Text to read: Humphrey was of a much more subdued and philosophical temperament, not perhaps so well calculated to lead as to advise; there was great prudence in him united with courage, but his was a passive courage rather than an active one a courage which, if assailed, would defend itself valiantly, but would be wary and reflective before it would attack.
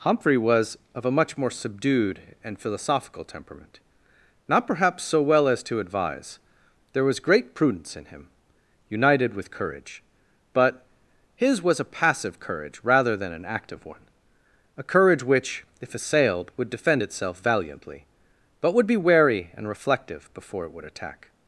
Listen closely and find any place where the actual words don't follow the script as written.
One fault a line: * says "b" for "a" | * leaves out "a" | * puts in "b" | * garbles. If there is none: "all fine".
* leaves out "calculated to lead"